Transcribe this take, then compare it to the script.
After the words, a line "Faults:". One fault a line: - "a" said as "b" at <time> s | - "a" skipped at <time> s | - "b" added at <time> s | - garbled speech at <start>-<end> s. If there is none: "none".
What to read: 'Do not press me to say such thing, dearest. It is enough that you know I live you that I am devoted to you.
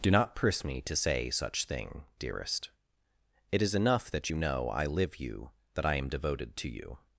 'Do not press me to say such thing, dearest. It is enough that you know I live you that I am devoted to you.
Faults:
none